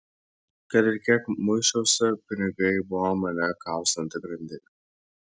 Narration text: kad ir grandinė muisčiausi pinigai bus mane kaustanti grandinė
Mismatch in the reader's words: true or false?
true